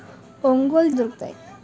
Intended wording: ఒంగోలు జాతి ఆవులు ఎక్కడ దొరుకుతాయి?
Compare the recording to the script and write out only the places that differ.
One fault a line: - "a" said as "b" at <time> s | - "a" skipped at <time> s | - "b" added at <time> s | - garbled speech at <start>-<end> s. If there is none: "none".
- "జాతి ఆవులు ఎక్కడ" skipped at 0.9 s